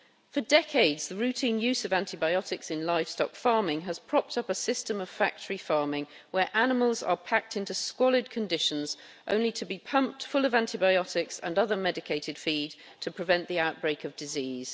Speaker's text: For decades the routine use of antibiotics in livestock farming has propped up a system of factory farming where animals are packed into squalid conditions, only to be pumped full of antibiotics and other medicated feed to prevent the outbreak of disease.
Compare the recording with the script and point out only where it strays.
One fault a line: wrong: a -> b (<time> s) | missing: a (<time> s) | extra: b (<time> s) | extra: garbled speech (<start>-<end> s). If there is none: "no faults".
no faults